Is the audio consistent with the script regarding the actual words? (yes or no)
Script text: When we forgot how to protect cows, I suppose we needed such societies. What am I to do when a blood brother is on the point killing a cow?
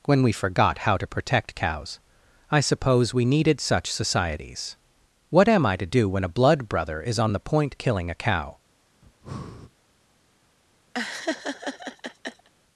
yes